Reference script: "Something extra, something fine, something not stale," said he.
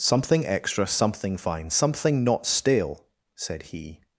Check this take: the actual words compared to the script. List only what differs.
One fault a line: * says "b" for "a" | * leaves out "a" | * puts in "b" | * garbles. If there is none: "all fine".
all fine